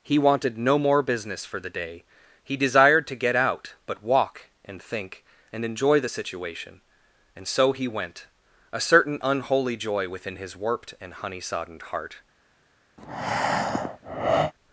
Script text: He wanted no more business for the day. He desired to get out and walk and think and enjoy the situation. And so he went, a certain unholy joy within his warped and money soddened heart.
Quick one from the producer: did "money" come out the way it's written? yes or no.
no